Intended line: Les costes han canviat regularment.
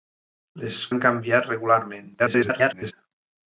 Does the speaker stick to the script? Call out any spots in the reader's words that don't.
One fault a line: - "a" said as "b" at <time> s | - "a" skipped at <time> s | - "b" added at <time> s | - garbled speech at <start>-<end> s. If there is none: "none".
- "costes" skipped at 0.8 s
- garbled speech at 2.2-2.9 s